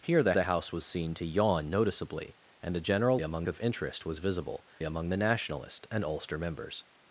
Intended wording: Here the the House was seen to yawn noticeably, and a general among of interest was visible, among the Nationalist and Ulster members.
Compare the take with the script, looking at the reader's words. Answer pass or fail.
pass